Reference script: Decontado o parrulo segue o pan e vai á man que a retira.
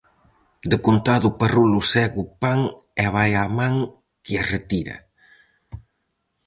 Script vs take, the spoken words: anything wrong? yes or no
no